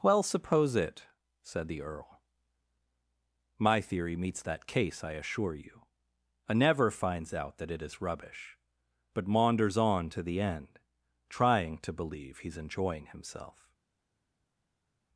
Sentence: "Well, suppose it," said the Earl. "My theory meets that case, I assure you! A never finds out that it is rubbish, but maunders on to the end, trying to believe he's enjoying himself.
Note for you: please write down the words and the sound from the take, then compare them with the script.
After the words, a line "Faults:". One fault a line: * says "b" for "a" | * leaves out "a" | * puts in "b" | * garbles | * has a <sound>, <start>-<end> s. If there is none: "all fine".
"Well, suppose it," said the Earl. "My theory meets that case, I assure you! A never finds out that it is rubbish, but maunders on to the end, trying to believe he's enjoying himself.
Faults:
all fine